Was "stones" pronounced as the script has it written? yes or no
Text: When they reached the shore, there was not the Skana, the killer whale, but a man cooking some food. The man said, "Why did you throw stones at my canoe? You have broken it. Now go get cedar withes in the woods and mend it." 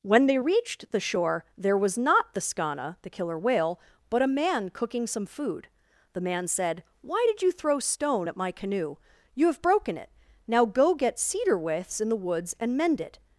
no